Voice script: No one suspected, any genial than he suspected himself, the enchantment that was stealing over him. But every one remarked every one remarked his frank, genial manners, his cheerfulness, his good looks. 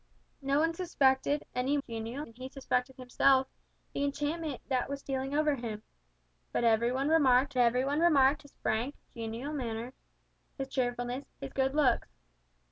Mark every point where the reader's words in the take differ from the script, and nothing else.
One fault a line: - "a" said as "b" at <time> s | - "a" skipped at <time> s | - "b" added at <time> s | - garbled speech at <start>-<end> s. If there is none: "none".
none